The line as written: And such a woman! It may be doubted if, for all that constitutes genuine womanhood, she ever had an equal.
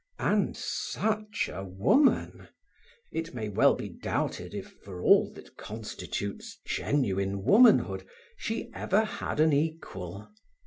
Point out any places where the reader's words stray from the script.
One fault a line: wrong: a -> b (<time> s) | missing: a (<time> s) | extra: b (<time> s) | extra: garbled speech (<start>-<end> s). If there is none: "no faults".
extra: well (3.5 s)